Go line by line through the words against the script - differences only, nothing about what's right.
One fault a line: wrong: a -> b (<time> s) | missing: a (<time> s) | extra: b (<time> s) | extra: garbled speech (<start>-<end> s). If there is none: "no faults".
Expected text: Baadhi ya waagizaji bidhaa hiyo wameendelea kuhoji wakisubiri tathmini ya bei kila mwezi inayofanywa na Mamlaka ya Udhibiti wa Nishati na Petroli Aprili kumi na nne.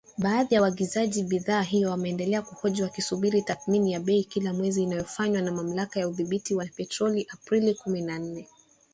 missing: Nishati (6.7 s)